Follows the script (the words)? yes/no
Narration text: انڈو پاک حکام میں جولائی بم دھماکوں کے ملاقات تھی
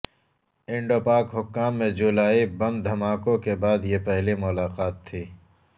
no